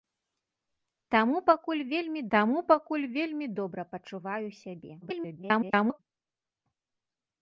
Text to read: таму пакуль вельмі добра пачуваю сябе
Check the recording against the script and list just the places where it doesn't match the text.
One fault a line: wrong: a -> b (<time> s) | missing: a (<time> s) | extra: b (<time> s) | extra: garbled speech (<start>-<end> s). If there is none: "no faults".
extra: таму пакуль вельмі (2.3 s)
extra: garbled speech (5.0-6.0 s)